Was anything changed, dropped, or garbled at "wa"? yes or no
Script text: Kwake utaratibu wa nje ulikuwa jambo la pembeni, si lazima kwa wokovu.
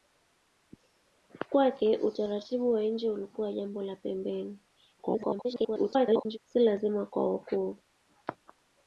no